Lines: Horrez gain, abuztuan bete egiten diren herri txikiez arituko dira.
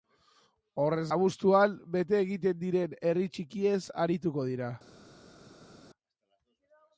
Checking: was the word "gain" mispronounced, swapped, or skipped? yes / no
yes